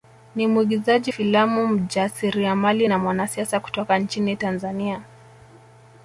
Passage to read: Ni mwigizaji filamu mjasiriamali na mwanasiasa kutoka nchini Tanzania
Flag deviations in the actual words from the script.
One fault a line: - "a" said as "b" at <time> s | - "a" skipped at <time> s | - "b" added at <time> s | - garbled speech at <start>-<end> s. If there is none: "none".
none